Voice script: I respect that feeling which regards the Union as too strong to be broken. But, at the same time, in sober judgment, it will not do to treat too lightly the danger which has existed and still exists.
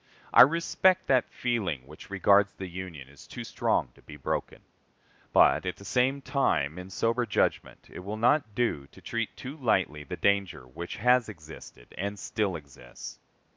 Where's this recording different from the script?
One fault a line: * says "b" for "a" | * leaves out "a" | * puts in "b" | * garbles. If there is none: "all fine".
all fine